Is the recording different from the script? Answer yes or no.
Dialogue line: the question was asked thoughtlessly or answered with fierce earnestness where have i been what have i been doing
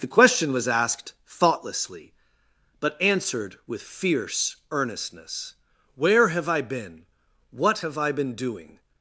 yes